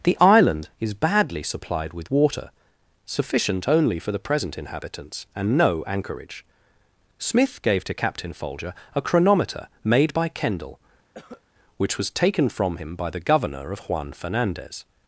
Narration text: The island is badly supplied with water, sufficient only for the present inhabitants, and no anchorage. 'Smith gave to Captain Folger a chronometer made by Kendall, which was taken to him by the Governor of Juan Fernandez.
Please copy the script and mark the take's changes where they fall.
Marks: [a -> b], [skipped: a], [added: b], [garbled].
The island is badly supplied with water, sufficient only for the present inhabitants, and no anchorage. 'Smith gave to Captain Folger a chronometer made by Kendall, which was taken [to -> from] him by the Governor of Juan Fernandez.